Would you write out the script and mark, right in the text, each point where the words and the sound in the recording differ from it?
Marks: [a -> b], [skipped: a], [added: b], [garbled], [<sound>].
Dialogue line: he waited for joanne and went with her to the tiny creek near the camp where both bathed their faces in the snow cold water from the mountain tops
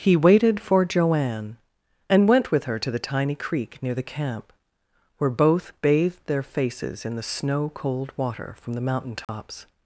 he waited for joanne and went with her to the tiny creek near the camp where both bathed their faces in the snow cold water from the mountain tops [dropout]